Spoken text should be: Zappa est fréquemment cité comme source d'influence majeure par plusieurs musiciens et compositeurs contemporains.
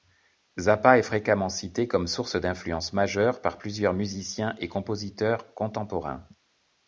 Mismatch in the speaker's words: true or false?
false